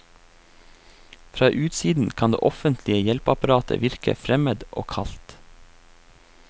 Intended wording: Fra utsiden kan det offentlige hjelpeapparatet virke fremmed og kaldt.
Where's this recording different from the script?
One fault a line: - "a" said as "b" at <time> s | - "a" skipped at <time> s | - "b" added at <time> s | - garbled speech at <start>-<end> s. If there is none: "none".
none